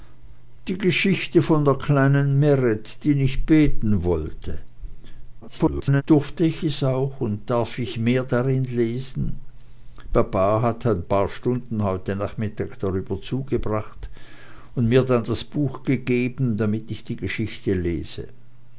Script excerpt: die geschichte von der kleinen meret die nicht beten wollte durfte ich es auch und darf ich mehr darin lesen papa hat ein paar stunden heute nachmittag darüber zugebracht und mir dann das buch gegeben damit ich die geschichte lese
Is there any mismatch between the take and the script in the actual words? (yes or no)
yes